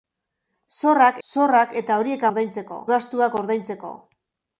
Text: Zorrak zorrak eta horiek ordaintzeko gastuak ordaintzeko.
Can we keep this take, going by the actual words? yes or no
yes